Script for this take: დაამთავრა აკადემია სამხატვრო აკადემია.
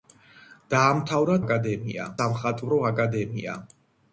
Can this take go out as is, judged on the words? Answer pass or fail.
pass